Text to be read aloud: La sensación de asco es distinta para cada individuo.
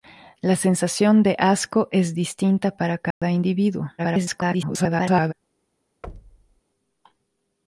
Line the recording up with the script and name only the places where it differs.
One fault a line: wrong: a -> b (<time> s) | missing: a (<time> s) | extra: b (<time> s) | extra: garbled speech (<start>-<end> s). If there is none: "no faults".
extra: garbled speech (4.0-5.3 s)